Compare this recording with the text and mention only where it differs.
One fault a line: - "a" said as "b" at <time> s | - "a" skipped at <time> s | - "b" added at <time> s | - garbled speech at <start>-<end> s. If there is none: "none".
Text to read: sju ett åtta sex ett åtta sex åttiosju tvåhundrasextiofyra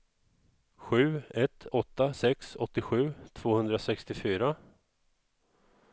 - "ett åtta sex" skipped at 2.5 s